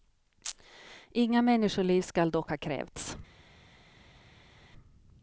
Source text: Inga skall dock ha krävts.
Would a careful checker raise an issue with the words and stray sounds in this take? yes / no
yes